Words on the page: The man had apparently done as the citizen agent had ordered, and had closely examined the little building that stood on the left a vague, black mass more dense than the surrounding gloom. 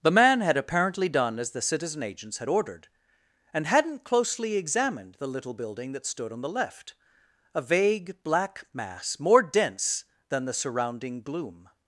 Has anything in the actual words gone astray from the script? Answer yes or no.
yes